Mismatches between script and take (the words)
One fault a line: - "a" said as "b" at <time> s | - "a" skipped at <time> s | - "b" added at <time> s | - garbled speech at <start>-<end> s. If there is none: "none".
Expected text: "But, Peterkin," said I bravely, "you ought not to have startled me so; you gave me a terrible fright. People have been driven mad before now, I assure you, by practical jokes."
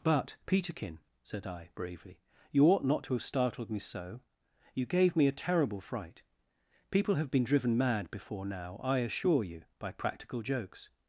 none